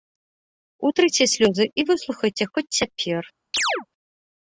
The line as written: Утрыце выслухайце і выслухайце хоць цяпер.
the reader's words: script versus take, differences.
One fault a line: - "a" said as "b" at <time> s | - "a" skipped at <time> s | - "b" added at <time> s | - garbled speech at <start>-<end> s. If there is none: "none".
- "выслухайце" said as "слёзы" at 1.3 s